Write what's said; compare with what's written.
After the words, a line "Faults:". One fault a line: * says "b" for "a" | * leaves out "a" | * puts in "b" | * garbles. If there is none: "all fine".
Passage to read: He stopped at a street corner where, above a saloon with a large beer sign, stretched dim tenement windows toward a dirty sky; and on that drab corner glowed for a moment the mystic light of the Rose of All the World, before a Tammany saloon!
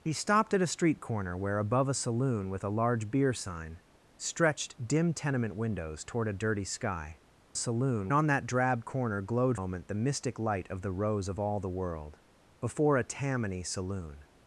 He stopped at a street corner where, above a saloon with a large beer sign, stretched dim tenement windows toward a dirty sky; saloon on that drab corner glowed moment the mystic light of the Rose of All the World, before a Tammany saloon!
Faults:
* says "saloon" for "and"
* leaves out "for a"